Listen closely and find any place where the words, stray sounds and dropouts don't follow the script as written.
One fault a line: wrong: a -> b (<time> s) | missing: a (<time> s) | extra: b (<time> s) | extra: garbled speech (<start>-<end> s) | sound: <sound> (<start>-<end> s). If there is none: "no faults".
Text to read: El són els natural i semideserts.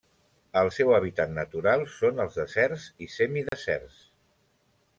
extra: seu hàbitat natural (0.7 s)
wrong: natural -> deserts (2.4 s)
sound: dropout (3.5-3.5 s)